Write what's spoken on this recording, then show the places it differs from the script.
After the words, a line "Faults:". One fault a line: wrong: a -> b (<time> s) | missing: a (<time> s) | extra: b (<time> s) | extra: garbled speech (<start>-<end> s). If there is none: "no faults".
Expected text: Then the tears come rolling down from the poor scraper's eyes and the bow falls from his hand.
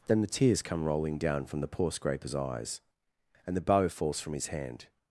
Then the tears come rolling down from the poor scraper's eyes and the bow falls from his hand.
Faults:
no faults